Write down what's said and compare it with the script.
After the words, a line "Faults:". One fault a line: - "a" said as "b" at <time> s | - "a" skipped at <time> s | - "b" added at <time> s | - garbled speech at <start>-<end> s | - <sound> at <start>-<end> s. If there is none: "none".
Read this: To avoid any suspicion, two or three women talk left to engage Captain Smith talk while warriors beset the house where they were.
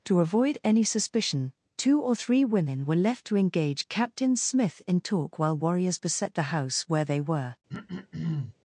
To avoid any suspicion, two or three women were left to engage Captain Smith in talk while warriors beset the house where they were.
Faults:
- "talk" said as "were" at 2.9 s
- "in" added at 4.9 s
- throat clearing at 7.7-8.5 s